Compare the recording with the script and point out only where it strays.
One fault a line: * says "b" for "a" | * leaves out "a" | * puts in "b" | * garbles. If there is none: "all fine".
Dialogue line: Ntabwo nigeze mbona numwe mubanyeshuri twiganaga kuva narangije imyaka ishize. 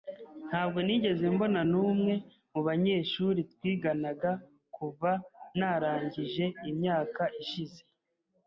all fine